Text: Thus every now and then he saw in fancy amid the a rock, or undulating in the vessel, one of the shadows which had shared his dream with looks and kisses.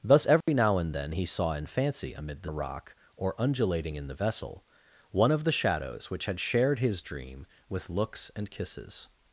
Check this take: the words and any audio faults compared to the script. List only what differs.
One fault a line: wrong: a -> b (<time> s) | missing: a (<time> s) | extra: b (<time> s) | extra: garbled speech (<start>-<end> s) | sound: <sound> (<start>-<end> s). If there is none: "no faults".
sound: dropout (0.4-0.5 s)